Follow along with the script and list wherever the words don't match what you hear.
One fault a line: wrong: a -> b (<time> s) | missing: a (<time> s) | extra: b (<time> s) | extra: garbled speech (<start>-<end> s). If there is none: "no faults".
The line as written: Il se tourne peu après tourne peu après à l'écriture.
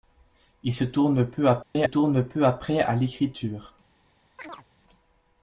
no faults